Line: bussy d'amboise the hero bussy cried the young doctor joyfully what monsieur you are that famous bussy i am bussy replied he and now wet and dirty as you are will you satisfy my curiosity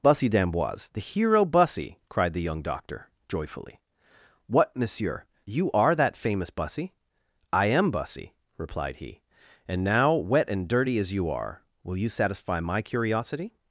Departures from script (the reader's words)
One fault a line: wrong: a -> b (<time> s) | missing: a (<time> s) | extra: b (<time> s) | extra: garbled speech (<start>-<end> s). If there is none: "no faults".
no faults